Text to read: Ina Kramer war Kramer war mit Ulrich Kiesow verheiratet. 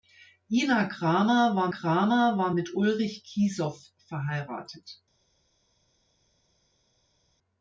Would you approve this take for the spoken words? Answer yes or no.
yes